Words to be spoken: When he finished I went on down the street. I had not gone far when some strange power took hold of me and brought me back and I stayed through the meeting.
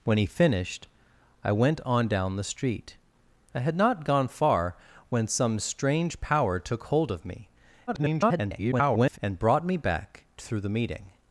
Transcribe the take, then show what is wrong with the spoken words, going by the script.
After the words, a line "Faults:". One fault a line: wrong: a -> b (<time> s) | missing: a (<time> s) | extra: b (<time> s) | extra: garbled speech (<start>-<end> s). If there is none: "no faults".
When he finished I went on down the street. I had not gone far when some strange power took hold of me [garbled] and brought me back through the meeting.
Faults:
extra: garbled speech (7.9-9.2 s)
missing: and I stayed (10.2 s)